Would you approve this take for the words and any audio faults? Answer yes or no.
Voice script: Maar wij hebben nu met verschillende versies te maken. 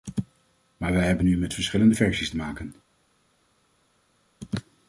yes